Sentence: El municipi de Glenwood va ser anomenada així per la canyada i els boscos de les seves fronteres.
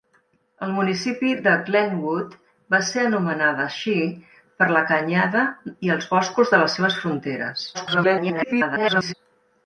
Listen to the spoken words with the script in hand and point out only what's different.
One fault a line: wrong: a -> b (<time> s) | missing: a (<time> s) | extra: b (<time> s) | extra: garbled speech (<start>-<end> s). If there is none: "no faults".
extra: garbled speech (7.7-9.1 s)